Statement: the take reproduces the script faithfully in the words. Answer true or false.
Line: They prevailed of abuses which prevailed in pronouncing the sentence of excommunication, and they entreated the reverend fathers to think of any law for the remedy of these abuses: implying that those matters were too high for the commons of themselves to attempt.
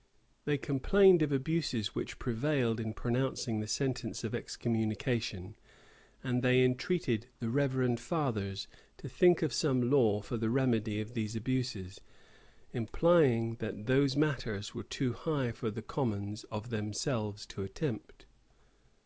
false